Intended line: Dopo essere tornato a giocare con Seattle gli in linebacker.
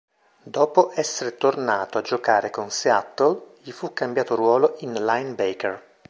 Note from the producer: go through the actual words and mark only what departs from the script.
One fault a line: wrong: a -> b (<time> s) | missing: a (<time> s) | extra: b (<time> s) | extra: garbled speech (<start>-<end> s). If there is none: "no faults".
extra: fu cambiato ruolo (3.7 s)